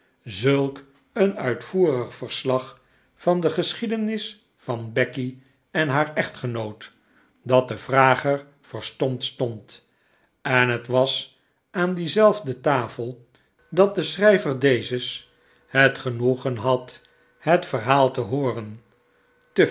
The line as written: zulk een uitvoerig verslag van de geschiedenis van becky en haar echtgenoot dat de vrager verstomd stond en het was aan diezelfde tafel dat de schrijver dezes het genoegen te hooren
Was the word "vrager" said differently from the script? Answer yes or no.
no